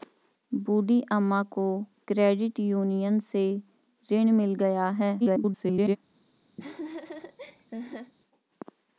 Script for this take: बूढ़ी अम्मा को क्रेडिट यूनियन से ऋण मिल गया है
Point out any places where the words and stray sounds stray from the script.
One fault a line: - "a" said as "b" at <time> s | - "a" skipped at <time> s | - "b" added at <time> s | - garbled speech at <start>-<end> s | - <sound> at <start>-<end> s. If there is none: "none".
- garbled speech at 5.2-6.0 s
- laugh at 6.6-8.1 s